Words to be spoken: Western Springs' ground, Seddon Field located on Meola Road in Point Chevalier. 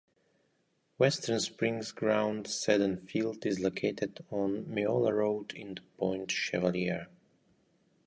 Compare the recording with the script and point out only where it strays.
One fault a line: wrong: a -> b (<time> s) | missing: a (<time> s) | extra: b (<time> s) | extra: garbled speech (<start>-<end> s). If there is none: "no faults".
extra: is (3.5 s)